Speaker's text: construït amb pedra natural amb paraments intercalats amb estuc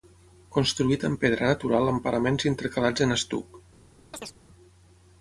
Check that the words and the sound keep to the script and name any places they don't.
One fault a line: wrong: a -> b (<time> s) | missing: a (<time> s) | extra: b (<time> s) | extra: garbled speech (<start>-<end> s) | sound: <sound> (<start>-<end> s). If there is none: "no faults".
wrong: amb -> en (3.1 s)
sound: chirp (4.1-4.4 s)